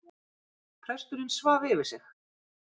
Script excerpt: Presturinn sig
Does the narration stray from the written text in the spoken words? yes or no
yes